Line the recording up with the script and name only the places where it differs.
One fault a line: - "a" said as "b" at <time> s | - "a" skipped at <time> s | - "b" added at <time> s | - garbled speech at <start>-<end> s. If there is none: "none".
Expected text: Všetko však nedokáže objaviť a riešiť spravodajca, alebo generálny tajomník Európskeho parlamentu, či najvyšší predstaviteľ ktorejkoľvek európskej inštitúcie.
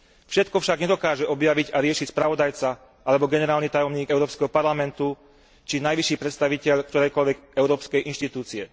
none